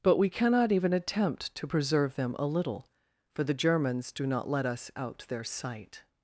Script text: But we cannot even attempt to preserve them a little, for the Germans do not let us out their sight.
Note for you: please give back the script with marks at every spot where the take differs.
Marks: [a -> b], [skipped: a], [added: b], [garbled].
But we cannot even attempt to preserve them a little, for the Germans do not let us out their sight.